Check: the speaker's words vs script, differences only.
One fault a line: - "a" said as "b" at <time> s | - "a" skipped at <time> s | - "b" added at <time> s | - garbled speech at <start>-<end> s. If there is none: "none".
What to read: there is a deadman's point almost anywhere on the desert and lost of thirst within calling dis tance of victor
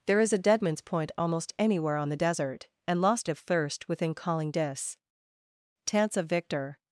none